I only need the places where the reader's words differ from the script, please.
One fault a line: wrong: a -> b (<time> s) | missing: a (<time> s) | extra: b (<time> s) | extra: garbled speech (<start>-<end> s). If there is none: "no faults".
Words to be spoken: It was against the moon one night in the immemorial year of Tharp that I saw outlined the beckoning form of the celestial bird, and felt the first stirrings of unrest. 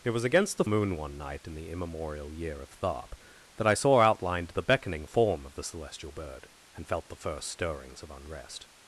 no faults